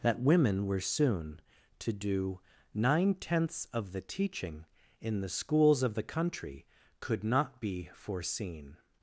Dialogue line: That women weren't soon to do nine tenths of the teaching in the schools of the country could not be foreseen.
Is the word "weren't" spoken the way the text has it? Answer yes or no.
no